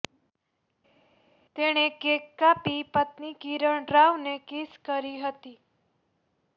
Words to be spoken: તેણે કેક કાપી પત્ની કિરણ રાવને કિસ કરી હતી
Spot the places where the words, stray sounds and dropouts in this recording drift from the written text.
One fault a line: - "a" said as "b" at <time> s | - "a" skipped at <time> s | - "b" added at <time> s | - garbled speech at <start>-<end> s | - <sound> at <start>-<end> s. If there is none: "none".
none